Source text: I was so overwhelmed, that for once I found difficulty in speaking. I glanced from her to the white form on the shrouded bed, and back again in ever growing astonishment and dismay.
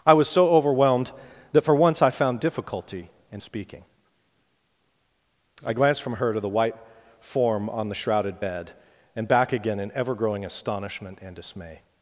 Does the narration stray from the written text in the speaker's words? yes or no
no